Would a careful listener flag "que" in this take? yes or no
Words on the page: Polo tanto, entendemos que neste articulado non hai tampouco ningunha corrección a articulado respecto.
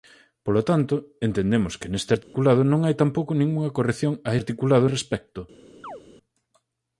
no